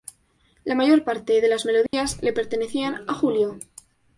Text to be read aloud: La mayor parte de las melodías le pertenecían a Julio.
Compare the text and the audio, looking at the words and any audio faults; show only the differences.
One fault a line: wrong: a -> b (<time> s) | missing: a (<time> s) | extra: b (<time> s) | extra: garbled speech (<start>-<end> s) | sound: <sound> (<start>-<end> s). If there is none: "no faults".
sound: dropout (1.9-1.9 s)